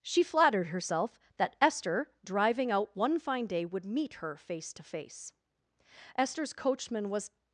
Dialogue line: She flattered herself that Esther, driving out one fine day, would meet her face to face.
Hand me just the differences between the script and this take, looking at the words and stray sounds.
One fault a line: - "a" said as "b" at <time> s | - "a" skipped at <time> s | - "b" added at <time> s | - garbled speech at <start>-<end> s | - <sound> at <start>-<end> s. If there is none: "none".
- "Esther's coachman was" added at 6.2 s